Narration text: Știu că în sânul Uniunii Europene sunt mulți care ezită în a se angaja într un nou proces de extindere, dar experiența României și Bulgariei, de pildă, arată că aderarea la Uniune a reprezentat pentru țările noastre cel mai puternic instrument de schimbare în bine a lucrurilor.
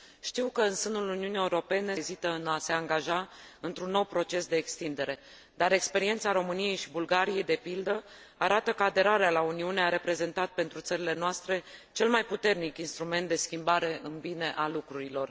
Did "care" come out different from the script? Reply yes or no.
yes